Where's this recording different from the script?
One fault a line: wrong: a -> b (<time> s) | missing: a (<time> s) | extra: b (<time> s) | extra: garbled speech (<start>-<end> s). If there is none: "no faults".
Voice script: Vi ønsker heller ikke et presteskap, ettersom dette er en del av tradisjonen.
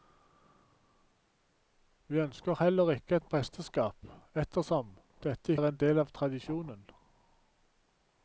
no faults